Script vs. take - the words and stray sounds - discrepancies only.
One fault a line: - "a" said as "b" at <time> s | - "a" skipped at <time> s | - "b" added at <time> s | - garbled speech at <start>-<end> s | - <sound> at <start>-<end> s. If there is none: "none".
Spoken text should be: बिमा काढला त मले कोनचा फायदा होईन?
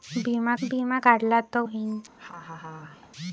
- "बिमा" added at 0.6 s
- "मले कोनचा फायदा" skipped at 1.6 s
- laugh at 2.2-3.1 s